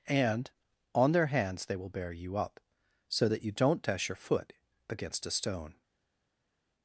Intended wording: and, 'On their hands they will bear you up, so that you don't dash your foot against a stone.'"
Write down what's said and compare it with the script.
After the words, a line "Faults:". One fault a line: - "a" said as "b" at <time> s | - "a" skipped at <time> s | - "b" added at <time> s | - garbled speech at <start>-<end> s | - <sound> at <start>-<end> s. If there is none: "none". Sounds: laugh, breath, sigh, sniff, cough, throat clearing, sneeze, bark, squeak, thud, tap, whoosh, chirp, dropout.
and, 'On their hands they will bear you up, so that you don't dash your foot against a stone.'"
Faults:
none